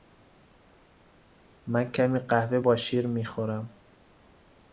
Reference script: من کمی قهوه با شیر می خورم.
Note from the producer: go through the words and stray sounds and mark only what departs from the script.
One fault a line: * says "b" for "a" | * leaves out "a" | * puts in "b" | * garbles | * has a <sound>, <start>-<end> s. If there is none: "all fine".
all fine